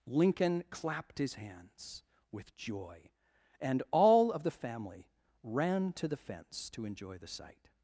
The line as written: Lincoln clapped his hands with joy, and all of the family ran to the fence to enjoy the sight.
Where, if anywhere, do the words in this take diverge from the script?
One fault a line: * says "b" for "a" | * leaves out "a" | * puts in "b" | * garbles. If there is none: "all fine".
all fine